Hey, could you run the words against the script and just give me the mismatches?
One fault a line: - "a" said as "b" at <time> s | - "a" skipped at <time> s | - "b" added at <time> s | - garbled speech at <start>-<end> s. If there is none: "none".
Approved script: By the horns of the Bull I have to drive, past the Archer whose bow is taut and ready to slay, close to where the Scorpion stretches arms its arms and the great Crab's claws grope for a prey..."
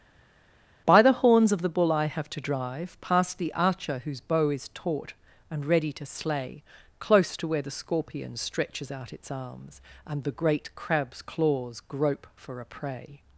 - "arms" said as "out" at 8.9 s